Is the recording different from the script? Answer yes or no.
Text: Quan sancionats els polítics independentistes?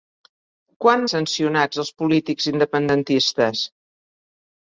no